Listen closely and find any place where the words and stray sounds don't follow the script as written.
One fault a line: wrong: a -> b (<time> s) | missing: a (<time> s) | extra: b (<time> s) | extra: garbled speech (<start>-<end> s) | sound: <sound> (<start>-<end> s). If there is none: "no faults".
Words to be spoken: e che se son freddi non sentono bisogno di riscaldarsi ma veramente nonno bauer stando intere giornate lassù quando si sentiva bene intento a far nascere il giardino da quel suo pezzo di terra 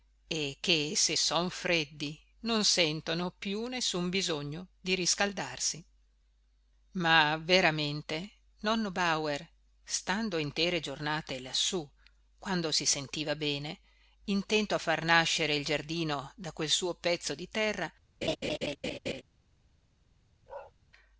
extra: più nessun (3.4 s)
sound: laugh (18.2-19.2 s)
sound: bark (20.5-20.7 s)